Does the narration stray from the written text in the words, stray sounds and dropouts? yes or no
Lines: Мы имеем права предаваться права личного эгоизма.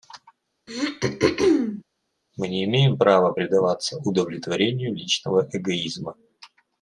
yes